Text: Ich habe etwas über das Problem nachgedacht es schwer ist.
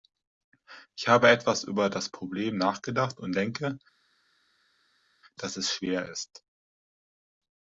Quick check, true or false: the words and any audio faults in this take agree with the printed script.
false